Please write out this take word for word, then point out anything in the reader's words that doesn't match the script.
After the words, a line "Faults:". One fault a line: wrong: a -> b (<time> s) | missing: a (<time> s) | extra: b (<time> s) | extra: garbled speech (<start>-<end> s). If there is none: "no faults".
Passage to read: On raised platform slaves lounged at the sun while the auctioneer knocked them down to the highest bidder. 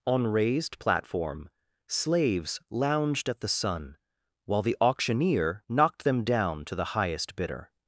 On raised platform slaves lounged at the sun while the auctioneer knocked them down to the highest bidder.
Faults:
no faults